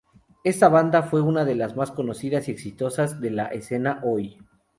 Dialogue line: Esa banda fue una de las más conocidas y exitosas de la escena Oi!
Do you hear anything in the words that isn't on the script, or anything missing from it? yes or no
yes